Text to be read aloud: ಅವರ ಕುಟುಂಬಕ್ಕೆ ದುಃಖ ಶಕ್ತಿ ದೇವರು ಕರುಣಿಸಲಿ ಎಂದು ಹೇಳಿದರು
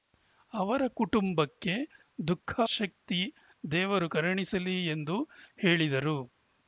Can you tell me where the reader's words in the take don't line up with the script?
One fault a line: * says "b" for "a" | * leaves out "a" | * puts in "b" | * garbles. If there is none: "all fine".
all fine